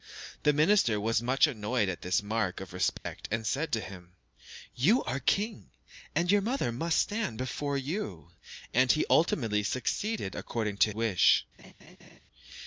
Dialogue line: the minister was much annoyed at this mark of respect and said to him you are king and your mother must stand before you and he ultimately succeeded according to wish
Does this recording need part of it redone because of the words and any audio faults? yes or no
yes